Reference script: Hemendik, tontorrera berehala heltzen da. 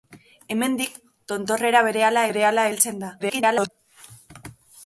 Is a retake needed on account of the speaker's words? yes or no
yes